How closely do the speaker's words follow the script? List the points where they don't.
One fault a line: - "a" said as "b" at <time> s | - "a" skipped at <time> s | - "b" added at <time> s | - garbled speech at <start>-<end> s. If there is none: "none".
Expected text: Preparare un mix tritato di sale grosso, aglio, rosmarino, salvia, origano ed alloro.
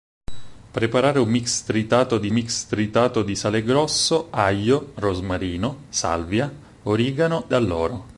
- "mix tritato di" added at 2.3 s
- "ed" skipped at 7.5 s